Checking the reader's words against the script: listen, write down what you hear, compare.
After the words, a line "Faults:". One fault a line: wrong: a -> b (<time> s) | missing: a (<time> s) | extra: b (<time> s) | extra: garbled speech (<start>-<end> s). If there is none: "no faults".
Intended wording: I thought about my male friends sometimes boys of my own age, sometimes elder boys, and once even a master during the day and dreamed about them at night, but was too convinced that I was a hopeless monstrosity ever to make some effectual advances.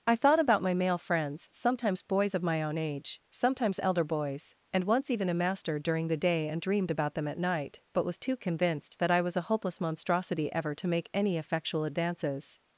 I thought about my male friends sometimes boys of my own age, sometimes elder boys, and once even a master during the day and dreamed about them at night, but was too convinced that I was a hopeless monstrosity ever to make any effectual advances.
Faults:
wrong: some -> any (11.1 s)